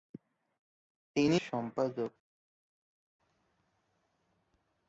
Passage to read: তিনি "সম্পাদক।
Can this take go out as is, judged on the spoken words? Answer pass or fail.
pass